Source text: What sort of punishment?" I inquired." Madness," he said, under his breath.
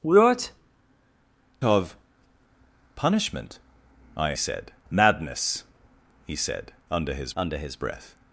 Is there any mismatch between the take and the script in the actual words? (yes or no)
yes